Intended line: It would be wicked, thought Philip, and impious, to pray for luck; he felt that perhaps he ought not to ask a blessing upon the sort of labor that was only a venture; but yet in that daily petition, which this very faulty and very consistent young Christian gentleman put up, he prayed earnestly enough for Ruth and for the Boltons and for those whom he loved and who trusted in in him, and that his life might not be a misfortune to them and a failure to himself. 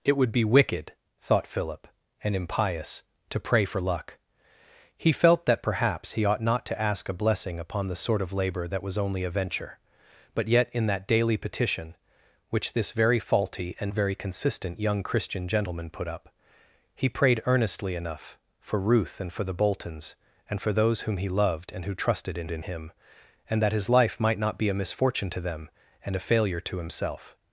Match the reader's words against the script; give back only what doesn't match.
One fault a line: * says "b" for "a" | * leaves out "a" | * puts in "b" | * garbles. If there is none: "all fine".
all fine